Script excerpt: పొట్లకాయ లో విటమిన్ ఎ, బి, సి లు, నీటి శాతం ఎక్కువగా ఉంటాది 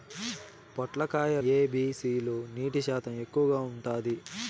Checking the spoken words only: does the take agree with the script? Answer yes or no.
no